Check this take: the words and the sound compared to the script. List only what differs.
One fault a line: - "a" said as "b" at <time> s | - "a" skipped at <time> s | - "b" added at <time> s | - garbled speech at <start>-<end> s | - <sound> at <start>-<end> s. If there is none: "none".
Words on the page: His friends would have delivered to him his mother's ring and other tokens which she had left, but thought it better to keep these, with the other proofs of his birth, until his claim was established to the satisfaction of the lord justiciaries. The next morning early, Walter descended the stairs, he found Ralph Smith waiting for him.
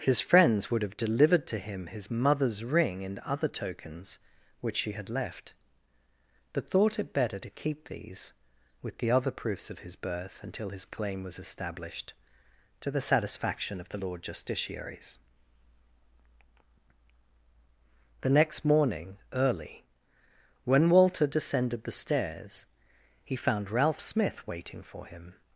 - "when" added at 20.6 s